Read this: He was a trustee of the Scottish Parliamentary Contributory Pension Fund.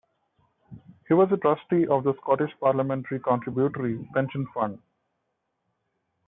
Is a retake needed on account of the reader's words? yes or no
no